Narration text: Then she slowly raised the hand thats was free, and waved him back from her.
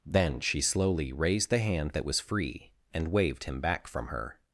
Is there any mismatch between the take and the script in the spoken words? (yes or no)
yes